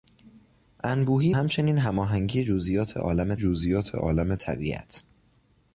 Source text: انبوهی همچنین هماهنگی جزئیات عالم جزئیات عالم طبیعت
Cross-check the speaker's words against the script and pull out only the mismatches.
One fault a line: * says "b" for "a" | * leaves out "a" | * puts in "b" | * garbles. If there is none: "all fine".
all fine